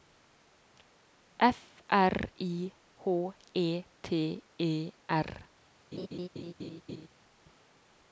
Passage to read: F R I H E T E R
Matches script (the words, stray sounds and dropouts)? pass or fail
fail